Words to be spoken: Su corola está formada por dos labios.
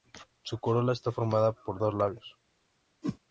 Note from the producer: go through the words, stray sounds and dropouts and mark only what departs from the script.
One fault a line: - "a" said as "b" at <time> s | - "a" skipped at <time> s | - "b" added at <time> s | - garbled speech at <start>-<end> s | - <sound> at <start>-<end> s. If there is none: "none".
- whoosh at 3.0-3.2 s